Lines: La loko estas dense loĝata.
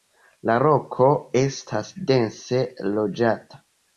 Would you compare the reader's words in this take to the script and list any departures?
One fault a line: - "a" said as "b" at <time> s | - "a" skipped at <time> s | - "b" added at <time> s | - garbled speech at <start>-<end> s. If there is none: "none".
none